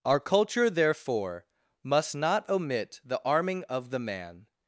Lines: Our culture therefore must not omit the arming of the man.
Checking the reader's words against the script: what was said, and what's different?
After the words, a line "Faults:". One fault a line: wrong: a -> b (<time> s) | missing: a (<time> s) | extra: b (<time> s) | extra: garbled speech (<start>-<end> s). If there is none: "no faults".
Our culture therefore must not omit the arming of the man.
Faults:
no faults